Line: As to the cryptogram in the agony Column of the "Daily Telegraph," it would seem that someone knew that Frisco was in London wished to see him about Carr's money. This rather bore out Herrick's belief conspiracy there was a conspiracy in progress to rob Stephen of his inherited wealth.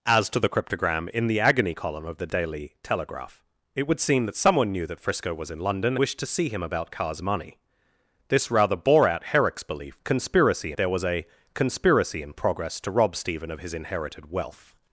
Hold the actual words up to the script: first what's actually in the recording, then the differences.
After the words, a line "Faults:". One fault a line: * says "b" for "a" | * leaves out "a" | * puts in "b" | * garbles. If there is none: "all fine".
As to the cryptogram in the agony Column of the "Daily Telegraph," it would seem that someone knew that Frisco was in London wished to see him about Carr's money. This rather bore out Herrick's belief conspiracy there was a conspiracy in progress to rob Stephen of his inherited wealth.
Faults:
all fine